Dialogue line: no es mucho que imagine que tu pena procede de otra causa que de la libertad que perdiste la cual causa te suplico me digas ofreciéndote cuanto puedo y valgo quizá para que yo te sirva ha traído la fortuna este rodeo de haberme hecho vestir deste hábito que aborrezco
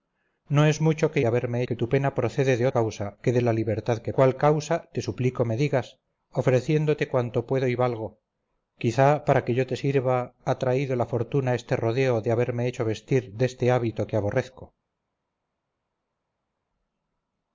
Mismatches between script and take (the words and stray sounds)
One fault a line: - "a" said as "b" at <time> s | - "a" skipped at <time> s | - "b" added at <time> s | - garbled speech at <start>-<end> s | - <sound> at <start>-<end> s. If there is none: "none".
- "imagine" said as "haberme" at 1.2 s
- "otra" skipped at 2.7 s
- "perdiste la" skipped at 4.1 s